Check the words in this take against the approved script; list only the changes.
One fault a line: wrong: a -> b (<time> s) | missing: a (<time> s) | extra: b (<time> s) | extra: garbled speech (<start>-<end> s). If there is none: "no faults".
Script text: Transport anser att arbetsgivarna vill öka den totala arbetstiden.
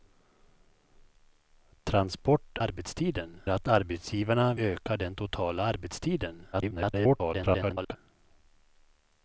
wrong: anser -> arbetstiden (2.6 s)
missing: vill (4.5 s)
extra: garbled speech (6.5-8.0 s)